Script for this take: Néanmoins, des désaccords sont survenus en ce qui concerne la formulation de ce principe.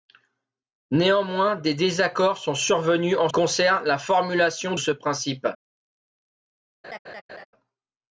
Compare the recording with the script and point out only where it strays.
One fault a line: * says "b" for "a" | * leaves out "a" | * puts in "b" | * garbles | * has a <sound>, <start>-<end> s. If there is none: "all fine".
* leaves out "ce qui"
* leaves out "de"
* has a laugh, 6.8-7.5 s